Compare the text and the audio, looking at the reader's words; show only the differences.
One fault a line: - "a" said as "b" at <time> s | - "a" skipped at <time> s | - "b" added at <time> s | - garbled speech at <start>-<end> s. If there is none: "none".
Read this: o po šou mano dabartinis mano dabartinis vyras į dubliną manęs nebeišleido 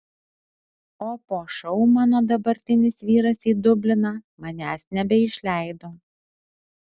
- "mano dabartinis" skipped at 3.0 s